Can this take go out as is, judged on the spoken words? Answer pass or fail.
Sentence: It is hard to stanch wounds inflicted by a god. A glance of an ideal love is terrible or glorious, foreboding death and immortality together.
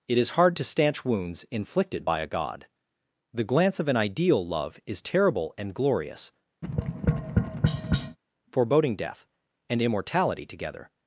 fail